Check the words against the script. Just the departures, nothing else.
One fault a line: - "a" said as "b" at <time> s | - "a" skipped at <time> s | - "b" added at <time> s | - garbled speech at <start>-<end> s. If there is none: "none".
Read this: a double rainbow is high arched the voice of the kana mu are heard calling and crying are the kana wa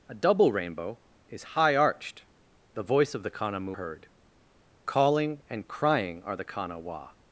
- "are" skipped at 3.8 s